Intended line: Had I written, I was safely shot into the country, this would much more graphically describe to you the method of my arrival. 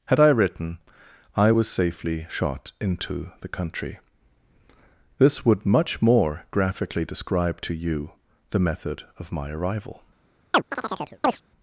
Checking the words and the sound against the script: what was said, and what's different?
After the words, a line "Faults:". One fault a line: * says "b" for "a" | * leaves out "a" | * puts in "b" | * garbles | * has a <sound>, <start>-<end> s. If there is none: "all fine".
Had I written, I was safely shot into the country, this would much more graphically describe to you the method of my arrival.
Faults:
* has a chirp, 10.5-11.4 s